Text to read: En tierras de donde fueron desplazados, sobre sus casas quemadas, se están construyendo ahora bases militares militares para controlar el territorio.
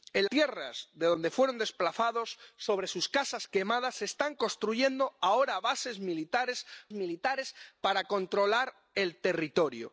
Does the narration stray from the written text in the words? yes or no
no